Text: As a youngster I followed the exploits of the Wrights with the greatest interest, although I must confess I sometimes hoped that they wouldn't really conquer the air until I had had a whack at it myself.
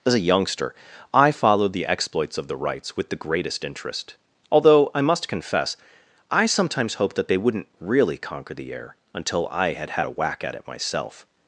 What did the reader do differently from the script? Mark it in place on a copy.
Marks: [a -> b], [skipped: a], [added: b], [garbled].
As a youngster I followed the exploits of the Wrights with the greatest interest, although I must confess I sometimes hoped that they wouldn't really conquer the air until I had had a whack at it myself.